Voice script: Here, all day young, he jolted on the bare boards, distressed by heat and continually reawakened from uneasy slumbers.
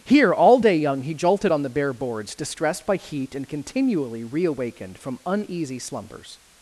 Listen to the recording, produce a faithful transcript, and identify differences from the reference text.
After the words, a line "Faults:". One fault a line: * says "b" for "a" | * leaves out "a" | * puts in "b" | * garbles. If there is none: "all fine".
Here, all day young, he jolted on the bare boards, distressed by heat and continually reawakened from uneasy slumbers.
Faults:
all fine